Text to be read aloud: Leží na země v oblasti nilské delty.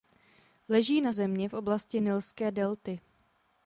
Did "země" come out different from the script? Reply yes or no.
no